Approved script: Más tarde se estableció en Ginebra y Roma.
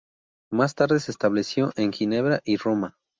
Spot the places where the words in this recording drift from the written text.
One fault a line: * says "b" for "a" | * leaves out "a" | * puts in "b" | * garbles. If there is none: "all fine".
all fine